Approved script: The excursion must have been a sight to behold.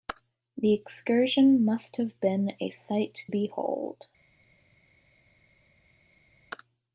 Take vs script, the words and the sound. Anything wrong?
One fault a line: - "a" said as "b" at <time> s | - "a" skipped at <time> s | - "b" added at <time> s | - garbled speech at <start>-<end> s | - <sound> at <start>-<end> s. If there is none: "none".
- "to" skipped at 3.2 s